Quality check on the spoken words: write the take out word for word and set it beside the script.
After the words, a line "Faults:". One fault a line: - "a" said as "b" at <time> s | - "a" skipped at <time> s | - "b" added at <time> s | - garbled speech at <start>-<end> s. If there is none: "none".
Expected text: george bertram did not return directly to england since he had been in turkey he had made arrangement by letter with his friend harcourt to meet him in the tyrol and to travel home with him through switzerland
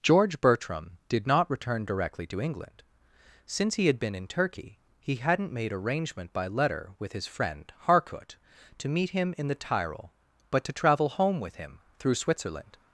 george bertram did not return directly to england since he had been in turkey he hadn't made arrangement by letter with his friend harcourt to meet him in the tyrol but to travel home with him through switzerland
Faults:
- "had" said as "hadn't" at 5.2 s
- "and" said as "but" at 10.5 s